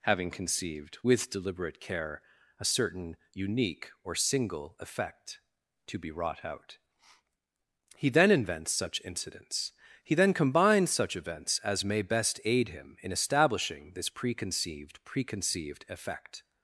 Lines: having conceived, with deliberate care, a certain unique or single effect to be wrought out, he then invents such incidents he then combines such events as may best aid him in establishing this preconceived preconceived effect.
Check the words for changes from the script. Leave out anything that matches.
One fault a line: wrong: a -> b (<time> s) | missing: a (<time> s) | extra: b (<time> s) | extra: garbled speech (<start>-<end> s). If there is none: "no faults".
no faults